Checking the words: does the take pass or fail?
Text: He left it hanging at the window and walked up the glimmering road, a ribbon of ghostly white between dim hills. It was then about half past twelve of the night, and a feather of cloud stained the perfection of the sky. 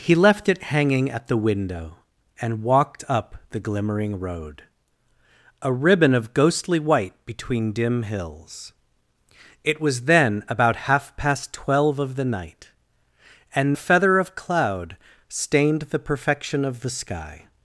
pass